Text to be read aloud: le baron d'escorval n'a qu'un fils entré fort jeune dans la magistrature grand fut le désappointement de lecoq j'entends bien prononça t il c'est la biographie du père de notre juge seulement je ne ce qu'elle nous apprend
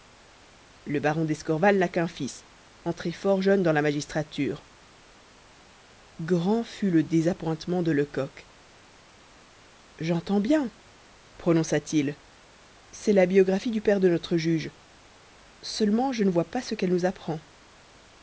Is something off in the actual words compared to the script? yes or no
yes